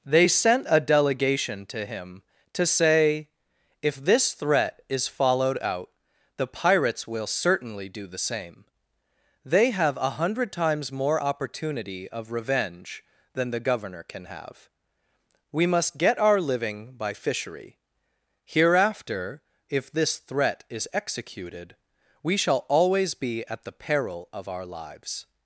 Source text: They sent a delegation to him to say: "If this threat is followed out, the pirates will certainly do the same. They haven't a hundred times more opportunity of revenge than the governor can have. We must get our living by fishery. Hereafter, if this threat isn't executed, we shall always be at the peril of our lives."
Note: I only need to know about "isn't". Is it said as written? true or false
false